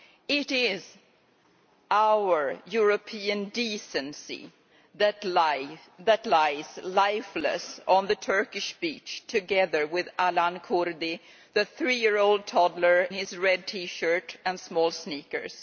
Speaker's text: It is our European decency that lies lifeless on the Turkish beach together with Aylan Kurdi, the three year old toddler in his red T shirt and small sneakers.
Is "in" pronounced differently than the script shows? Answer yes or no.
yes